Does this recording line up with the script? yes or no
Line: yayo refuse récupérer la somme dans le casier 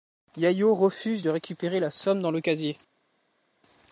no